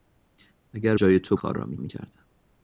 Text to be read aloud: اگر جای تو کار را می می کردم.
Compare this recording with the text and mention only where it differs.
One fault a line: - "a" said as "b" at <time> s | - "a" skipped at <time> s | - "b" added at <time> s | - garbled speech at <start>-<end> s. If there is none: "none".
none